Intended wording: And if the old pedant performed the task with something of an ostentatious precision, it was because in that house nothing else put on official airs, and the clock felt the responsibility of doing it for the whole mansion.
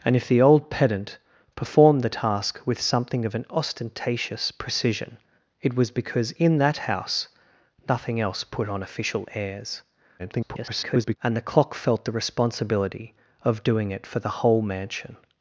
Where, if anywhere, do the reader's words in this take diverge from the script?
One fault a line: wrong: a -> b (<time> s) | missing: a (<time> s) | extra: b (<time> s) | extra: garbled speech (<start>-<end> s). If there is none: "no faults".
extra: garbled speech (10.2-11.2 s)